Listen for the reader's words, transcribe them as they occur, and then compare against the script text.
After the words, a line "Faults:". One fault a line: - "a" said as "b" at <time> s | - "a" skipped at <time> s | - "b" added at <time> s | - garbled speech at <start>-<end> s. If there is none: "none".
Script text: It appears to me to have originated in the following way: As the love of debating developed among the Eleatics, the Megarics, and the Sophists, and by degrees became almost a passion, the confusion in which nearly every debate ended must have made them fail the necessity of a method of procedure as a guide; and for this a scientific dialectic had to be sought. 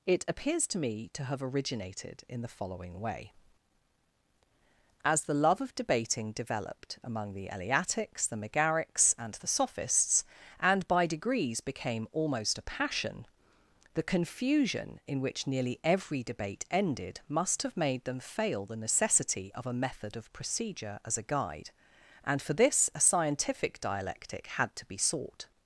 It appears to me to have originated in the following way: As the love of debating developed among the Eleatics, the Megarics, and the Sophists, and by degrees became almost a passion, the confusion in which nearly every debate ended must have made them fail the necessity of a method of procedure as a guide; and for this a scientific dialectic had to be sought.
Faults:
none